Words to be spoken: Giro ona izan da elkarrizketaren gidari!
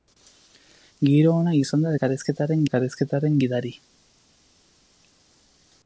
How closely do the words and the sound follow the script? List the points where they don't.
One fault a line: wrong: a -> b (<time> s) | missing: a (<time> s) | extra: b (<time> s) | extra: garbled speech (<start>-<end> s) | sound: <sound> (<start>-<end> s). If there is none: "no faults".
extra: elkarrizketaren (2.7 s)